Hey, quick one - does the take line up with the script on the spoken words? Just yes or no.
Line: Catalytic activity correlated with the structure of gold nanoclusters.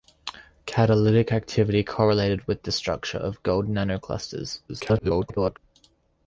no